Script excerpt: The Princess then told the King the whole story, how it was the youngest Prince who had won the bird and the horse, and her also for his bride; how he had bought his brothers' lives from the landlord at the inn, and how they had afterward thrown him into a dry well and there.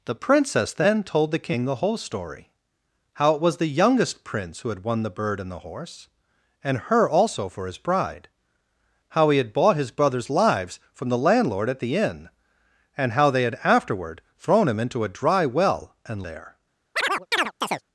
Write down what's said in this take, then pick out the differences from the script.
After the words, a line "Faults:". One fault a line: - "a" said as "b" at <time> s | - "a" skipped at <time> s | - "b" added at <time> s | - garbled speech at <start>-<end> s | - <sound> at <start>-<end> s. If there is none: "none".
The Princess then told the King the whole story, how it was the youngest Prince who had won the bird and the horse, and her also for his bride; how he had bought his brothers' lives from the landlord at the inn, and how they had afterward thrown him into a dry well and there.
Faults:
- chirp at 17.0-17.8 s